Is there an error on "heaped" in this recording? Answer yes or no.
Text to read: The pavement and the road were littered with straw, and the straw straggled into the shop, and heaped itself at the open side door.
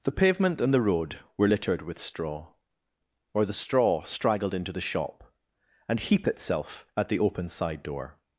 yes